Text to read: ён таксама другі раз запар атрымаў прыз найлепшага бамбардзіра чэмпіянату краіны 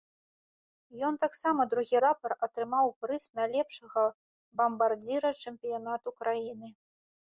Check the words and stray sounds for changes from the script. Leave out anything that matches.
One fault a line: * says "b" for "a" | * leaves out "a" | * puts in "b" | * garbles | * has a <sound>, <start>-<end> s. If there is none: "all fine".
* leaves out "раз"